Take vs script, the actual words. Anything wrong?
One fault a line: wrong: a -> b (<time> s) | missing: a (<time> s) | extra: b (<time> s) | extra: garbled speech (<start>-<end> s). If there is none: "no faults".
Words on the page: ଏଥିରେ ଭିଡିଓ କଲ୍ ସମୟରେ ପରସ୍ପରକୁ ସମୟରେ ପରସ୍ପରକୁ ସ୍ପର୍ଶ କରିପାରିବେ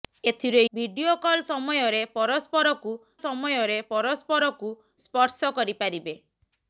no faults